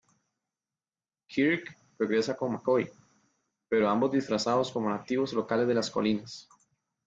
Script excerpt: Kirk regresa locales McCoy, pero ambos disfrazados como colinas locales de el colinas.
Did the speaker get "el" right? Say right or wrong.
wrong